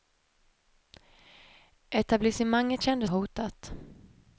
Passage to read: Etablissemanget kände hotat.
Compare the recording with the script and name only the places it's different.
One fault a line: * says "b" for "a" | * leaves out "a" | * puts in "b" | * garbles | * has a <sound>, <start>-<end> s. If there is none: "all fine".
all fine